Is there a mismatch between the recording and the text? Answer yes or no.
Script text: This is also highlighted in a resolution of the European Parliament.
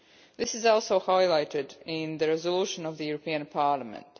yes